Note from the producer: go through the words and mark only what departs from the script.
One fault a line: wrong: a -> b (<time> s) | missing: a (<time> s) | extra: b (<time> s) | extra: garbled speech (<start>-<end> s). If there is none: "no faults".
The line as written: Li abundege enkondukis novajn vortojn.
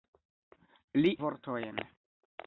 missing: abundege enkondukis novajn (1.1 s)